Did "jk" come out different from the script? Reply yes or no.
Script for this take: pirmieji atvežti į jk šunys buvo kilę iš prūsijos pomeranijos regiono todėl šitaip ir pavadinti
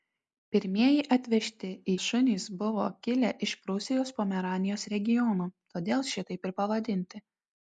yes